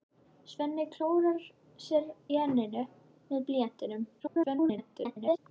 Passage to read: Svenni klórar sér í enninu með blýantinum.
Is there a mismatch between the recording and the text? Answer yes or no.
yes